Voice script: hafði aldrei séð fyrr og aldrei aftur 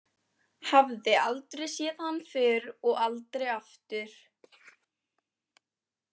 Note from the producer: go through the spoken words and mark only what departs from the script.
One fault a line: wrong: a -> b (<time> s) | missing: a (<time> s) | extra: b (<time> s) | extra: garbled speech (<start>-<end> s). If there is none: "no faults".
extra: hann (2.0 s)